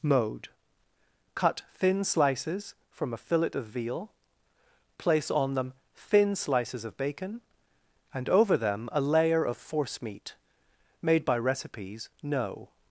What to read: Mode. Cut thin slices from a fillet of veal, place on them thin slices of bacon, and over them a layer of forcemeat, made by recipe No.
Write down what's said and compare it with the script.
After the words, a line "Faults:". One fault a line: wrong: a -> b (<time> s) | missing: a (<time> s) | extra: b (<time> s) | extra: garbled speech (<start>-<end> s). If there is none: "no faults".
Mode. Cut thin slices from a fillet of veal, place on them thin slices of bacon, and over them a layer of forcemeat, made by recipes No.
Faults:
wrong: recipe -> recipes (11.4 s)